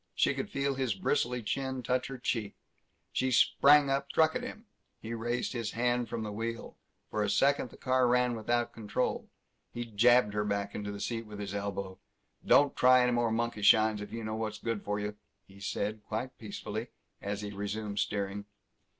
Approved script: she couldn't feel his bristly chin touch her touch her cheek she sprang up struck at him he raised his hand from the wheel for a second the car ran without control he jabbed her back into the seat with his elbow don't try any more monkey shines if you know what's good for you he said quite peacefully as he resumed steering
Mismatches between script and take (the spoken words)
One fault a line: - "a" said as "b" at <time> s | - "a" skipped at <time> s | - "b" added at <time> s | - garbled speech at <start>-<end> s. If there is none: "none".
- "couldn't" said as "could" at 0.3 s
- "touch her" skipped at 2.2 s